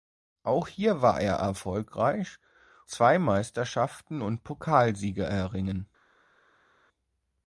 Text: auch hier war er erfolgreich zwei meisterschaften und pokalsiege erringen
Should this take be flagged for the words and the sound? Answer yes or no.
no